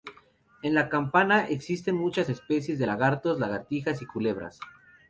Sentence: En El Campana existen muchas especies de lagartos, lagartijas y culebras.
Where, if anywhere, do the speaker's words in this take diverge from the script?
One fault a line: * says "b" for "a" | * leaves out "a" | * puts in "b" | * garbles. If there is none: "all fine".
* says "La" for "El"